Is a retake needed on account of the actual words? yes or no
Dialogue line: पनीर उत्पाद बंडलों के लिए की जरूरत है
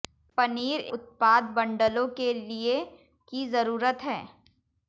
no